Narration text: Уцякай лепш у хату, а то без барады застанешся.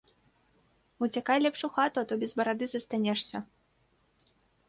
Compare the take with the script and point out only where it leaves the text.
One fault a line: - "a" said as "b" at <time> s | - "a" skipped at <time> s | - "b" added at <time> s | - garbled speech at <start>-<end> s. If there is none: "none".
none